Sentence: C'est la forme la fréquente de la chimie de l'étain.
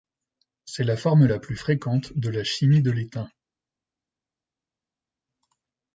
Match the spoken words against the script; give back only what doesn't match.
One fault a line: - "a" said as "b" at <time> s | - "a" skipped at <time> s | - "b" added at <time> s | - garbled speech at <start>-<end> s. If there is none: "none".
- "plus" added at 1.4 s